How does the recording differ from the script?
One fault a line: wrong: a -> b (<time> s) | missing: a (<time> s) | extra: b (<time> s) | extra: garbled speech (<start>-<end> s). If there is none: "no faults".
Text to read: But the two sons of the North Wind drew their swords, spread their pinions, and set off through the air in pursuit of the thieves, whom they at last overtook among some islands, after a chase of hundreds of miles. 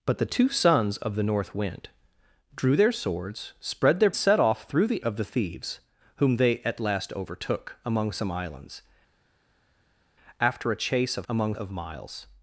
missing: pinions and (4.1 s)
missing: air in pursuit (5.0 s)
wrong: hundreds -> among (11.3 s)